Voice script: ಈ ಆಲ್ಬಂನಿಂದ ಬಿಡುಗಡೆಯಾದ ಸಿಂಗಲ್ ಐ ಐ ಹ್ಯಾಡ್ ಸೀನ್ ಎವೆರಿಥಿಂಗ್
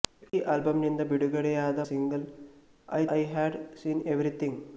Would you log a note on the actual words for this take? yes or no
no